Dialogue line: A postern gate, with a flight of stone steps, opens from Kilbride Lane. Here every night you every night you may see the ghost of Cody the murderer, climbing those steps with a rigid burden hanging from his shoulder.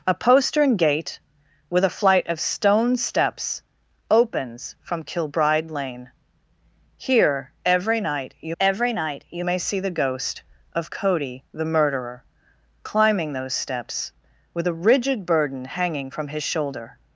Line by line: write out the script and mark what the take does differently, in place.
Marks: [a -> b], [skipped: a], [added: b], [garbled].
A postern gate, with a flight of stone steps, opens from Kilbride Lane. Here every night you every night you may see the ghost of Cody the murderer, climbing those steps with a rigid burden hanging from his shoulder.